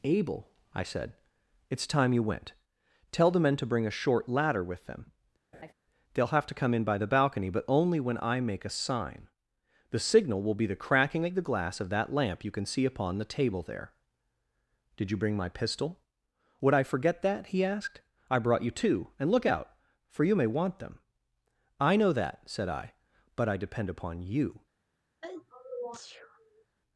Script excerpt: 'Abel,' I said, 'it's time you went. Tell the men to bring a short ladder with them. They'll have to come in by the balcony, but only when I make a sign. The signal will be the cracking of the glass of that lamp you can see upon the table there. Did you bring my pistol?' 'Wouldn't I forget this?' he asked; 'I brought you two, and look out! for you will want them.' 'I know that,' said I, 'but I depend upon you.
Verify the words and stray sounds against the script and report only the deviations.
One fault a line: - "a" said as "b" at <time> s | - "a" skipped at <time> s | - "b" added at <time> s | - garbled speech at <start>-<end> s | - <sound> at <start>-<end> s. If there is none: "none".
- laugh at 5.5-5.7 s
- "Wouldn't" said as "Would" at 16.6 s
- "this" said as "that" at 17.2 s
- "will" said as "may" at 20.4 s
- sneeze at 25.2-26.7 s